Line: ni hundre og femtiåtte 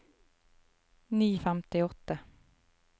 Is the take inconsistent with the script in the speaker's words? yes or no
yes